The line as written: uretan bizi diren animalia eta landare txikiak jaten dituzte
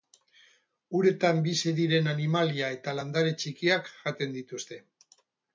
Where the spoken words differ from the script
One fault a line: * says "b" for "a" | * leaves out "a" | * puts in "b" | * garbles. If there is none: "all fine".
all fine